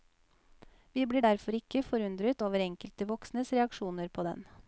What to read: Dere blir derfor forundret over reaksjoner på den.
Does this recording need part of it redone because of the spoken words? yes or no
yes